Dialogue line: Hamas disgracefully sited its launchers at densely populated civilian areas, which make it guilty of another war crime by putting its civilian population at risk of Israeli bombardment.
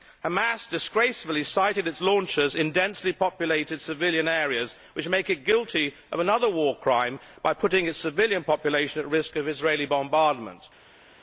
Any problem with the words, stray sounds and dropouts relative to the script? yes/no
yes